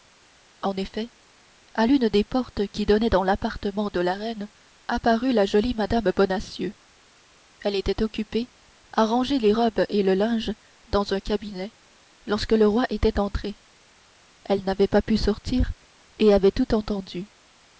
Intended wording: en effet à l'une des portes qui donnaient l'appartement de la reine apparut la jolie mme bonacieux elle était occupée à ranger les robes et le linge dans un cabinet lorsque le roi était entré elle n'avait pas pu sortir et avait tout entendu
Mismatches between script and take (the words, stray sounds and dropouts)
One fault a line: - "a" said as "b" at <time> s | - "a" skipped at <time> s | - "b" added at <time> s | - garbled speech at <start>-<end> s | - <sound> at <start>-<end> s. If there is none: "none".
- "dans" added at 3.1 s